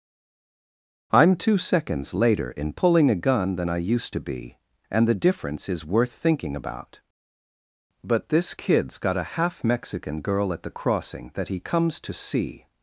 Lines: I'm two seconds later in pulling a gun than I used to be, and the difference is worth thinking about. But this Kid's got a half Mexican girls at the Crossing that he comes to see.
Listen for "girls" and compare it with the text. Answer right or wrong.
wrong